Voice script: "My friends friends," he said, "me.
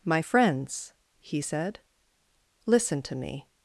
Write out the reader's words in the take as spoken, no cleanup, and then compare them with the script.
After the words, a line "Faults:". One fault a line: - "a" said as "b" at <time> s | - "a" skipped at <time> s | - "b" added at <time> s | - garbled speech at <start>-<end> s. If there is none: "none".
"My friends," he said, "listen to me.
Faults:
- "friends" skipped at 0.9 s
- "listen to" added at 2.7 s